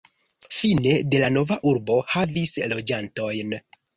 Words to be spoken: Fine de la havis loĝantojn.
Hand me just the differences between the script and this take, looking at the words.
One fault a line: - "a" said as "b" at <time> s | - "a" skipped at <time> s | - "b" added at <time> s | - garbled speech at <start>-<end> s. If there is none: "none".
- "nova urbo" added at 1.4 s